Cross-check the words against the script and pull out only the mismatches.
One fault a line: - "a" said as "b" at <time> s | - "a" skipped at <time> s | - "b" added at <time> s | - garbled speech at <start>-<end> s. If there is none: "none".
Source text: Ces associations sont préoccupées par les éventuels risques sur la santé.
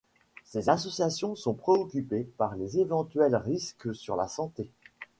none